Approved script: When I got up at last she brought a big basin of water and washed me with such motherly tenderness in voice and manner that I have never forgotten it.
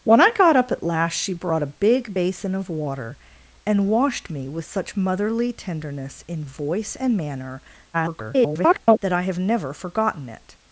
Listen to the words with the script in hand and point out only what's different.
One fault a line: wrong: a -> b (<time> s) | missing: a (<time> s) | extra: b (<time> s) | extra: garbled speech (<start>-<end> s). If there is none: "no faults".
extra: garbled speech (7.9-9.0 s)